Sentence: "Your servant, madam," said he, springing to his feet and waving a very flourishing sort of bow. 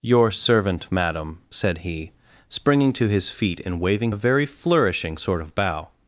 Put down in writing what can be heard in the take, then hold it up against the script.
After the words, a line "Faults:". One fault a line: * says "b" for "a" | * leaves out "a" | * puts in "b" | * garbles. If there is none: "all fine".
"Your servant, madam," said he, springing to his feet and waving a very flourishing sort of bow.
Faults:
all fine